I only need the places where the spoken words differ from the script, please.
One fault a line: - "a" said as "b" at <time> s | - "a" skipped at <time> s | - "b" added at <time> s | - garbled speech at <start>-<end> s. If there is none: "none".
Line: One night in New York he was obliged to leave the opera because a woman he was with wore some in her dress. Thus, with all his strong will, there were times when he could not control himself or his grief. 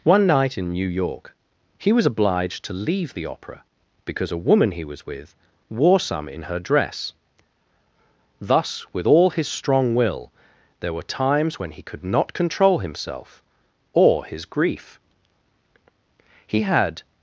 - "He had" added at 16.5 s